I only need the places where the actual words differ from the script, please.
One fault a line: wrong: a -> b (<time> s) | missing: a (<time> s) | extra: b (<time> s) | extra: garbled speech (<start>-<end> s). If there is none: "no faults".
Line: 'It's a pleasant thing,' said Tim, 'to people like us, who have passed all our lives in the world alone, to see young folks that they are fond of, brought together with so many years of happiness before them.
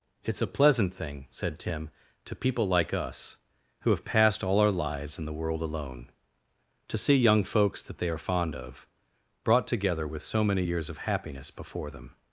no faults